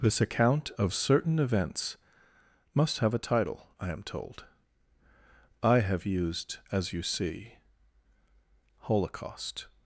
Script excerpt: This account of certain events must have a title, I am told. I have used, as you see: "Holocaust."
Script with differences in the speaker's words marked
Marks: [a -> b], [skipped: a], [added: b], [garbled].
This account of certain events must have a title, I am told. I have used, as you see: "Holocaust."